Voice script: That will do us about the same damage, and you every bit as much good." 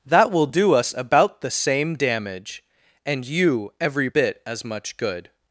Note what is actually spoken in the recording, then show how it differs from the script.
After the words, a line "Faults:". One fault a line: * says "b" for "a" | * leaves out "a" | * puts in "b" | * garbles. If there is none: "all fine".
That will do us about the same damage, and you every bit as much good."
Faults:
all fine